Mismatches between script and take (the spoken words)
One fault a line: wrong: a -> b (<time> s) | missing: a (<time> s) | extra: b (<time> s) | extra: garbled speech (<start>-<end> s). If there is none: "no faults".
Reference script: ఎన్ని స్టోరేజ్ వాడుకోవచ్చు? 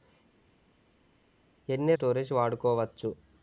no faults